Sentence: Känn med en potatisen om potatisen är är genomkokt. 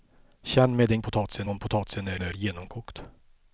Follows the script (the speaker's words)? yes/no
yes